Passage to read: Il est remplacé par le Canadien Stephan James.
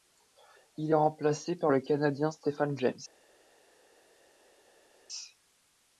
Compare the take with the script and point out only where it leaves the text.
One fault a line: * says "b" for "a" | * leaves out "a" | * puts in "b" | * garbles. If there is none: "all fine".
all fine